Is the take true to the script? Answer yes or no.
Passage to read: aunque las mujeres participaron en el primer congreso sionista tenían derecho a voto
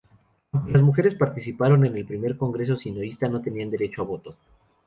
no